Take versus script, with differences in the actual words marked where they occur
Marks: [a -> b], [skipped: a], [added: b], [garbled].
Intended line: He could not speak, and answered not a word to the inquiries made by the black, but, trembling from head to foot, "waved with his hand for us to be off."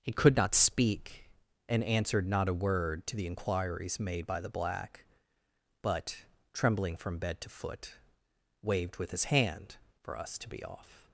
He could not speak, and answered not a word to the inquiries made by the black, but, trembling from [head -> bed] to foot, "waved with his hand for us to be off."